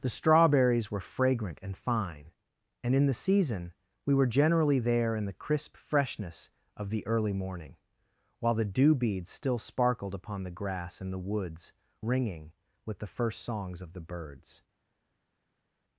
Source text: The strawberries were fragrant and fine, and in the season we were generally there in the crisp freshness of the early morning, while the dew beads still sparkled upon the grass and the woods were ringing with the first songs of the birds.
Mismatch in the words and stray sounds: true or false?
true